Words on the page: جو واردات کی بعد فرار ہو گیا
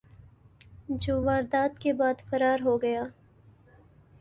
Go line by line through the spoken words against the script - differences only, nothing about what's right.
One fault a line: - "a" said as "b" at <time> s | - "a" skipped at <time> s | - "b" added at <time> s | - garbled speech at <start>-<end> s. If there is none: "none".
- "کی" said as "کے" at 1.8 s